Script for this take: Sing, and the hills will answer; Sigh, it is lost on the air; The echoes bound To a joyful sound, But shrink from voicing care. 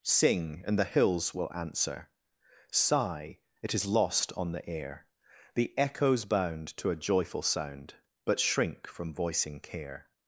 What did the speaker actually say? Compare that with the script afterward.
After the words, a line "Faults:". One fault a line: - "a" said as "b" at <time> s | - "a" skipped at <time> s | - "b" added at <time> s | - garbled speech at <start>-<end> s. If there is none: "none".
Sing, and the hills will answer; Sigh, it is lost on the air; The echoes bound To a joyful sound, But shrink from voicing care.
Faults:
none